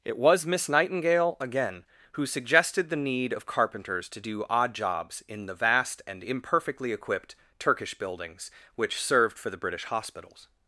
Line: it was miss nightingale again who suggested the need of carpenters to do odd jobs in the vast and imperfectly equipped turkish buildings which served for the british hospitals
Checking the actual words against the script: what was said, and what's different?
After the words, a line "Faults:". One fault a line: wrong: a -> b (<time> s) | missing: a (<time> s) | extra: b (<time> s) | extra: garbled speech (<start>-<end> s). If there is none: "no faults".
it was miss nightingale again who suggested the need of carpenters to do odd jobs in the vast and imperfectly equipped turkish buildings which served for the british hospitals
Faults:
no faults